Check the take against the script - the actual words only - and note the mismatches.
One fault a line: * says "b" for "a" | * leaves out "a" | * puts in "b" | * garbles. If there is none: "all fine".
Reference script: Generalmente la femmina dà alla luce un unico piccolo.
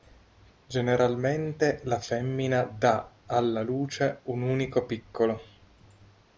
all fine